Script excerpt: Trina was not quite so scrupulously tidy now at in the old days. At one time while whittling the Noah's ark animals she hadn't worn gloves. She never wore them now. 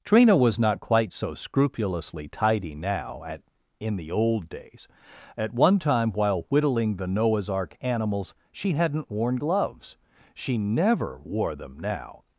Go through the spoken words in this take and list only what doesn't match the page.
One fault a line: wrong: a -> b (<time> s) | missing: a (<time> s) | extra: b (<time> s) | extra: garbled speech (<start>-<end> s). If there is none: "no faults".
no faults